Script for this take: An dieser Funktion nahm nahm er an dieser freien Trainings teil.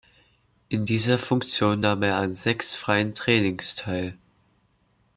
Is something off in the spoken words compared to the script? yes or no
yes